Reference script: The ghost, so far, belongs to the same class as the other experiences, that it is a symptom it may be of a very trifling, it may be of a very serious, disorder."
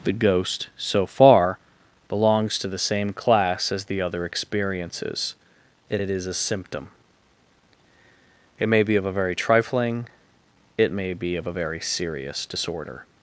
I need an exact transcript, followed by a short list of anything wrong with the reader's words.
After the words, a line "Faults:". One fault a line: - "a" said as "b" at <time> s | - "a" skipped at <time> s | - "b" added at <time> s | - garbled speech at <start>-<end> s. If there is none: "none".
The ghost, so far, belongs to the same class as the other experiences, and it is a symptom it may be of a very trifling, it may be of a very serious, disorder."
Faults:
- "that" said as "and" at 5.9 s